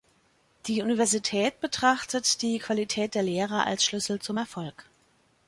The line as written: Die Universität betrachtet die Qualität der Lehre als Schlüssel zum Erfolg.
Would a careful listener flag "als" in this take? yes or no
no